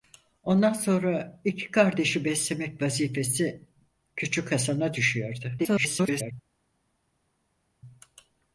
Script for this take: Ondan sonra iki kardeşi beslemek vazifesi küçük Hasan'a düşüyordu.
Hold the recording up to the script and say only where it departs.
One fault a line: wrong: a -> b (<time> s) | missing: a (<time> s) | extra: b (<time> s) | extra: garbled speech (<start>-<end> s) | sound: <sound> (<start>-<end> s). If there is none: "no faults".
extra: garbled speech (5.6-6.3 s)